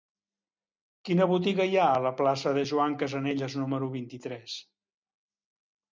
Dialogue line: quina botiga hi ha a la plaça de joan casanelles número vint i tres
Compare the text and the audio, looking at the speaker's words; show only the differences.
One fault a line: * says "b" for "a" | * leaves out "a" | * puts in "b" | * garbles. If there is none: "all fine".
all fine